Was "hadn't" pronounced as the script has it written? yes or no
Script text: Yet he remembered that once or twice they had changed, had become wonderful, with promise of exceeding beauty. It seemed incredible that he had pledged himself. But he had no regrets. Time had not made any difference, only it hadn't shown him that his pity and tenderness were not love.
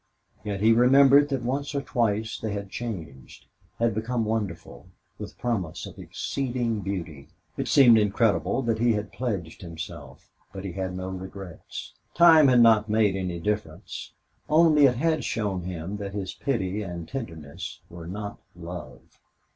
no